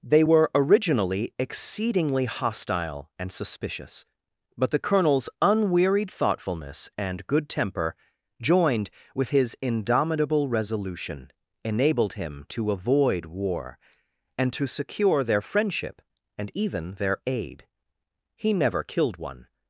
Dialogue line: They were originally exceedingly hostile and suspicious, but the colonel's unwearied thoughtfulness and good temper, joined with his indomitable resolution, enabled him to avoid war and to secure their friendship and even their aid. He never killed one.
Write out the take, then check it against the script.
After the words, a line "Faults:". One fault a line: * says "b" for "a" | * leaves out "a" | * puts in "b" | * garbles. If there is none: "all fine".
They were originally exceedingly hostile and suspicious, but the colonel's unwearied thoughtfulness and good temper, joined with his indomitable resolution, enabled him to avoid war and to secure their friendship and even their aid. He never killed one.
Faults:
all fine